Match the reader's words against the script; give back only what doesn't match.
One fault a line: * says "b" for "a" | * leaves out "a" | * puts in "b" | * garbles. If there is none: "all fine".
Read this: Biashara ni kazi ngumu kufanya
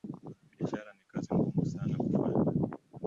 * puts in "sana"